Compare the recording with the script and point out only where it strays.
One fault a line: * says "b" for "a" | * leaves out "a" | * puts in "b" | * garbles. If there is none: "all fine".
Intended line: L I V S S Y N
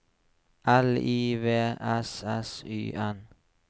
all fine